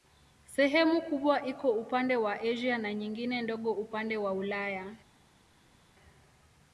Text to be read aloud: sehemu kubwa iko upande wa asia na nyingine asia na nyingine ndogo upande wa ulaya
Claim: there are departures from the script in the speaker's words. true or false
true